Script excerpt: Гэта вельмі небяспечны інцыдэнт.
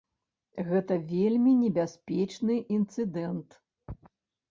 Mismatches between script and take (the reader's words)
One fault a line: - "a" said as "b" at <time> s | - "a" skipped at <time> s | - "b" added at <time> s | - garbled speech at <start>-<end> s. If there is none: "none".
none